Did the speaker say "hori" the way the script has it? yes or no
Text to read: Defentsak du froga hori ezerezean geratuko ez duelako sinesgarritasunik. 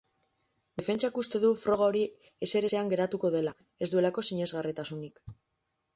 yes